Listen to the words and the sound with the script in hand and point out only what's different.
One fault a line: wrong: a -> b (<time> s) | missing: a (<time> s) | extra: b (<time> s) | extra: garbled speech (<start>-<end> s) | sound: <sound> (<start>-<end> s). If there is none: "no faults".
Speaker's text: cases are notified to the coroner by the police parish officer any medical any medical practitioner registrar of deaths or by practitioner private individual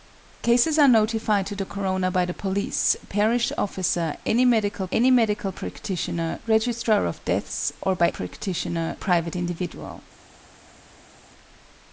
no faults